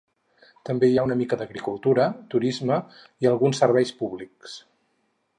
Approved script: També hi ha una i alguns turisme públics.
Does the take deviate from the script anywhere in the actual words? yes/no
yes